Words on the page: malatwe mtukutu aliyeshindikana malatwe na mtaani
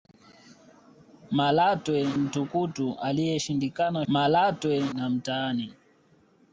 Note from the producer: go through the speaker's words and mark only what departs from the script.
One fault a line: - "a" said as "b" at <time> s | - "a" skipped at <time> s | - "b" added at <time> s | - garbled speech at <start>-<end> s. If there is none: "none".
none